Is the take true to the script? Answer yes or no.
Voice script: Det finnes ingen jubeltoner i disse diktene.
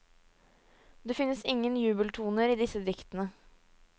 yes